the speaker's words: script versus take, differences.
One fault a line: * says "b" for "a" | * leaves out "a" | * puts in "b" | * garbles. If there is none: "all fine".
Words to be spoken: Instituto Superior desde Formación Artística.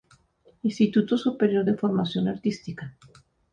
* says "de" for "desde"